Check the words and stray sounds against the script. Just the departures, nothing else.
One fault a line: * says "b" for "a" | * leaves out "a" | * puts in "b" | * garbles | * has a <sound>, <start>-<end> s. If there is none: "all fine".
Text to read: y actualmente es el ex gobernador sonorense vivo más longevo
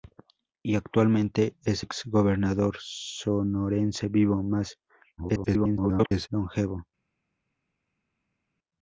* leaves out "el"
* garbles